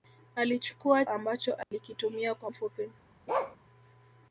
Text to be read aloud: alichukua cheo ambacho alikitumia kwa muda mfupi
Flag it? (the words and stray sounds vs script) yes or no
yes